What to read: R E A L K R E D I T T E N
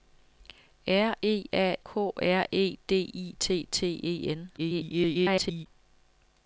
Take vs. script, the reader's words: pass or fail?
fail